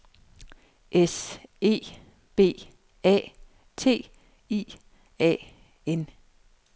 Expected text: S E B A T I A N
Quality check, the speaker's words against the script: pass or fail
pass